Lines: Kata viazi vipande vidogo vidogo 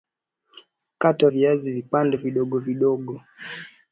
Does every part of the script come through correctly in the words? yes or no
yes